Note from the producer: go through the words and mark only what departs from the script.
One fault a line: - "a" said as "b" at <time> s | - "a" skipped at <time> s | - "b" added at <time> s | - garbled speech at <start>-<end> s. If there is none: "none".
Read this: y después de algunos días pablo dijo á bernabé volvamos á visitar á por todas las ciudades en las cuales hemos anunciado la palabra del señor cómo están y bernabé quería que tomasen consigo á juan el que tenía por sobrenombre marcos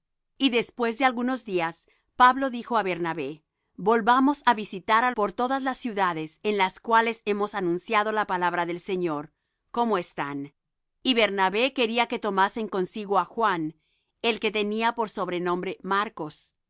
none